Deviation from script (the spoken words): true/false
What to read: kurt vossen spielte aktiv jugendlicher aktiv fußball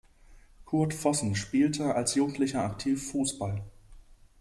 true